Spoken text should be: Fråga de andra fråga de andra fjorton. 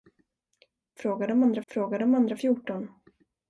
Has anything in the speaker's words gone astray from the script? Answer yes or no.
no